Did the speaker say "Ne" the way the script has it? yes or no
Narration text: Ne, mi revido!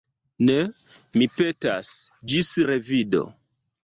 yes